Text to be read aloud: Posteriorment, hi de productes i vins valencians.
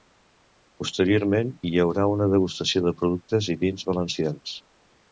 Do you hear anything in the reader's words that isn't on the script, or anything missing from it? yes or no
yes